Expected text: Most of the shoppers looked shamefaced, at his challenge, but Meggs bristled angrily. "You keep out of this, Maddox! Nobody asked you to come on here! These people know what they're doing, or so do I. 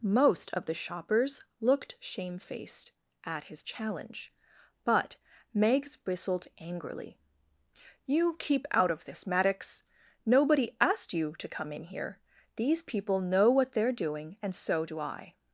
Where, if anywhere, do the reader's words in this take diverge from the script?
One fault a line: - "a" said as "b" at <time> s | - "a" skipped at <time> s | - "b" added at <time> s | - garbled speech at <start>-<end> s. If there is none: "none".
- "on" said as "in" at 11.7 s
- "or" said as "and" at 14.4 s